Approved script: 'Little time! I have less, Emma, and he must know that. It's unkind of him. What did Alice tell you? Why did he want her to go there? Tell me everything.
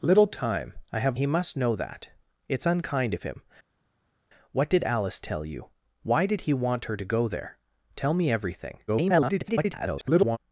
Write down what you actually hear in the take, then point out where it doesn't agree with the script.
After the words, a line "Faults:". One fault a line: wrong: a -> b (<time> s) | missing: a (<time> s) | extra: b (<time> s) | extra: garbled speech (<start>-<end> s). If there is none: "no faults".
'Little time! I have he must know that. It's unkind of him. What did Alice tell you? Why did he want her to go there? Tell me everything. [garbled]
Faults:
missing: less Emma and (1.2 s)
extra: garbled speech (8.9-10.4 s)